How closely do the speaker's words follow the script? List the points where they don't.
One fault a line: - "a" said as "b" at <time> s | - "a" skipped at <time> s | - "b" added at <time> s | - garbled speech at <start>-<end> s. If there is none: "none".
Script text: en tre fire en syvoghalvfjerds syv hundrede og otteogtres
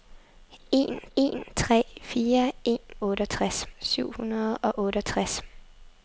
- "en" added at 1.2 s
- "syvoghalvfjerds" said as "otteogtres" at 3.0 s